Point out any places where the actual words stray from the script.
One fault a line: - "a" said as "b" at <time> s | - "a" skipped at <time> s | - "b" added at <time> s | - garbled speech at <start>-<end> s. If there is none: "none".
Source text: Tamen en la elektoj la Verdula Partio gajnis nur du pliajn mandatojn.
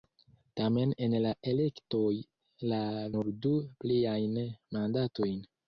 - "Verdula Partio gajnis" skipped at 2.8 s